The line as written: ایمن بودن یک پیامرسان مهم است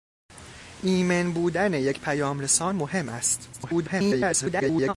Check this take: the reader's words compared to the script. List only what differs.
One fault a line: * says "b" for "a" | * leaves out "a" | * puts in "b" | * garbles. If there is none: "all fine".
* garbles